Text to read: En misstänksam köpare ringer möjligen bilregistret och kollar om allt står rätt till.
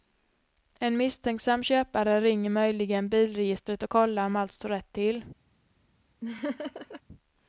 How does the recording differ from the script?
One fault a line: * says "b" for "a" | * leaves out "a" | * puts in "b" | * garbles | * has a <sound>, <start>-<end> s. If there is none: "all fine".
* has a laugh, 6.2-7.0 s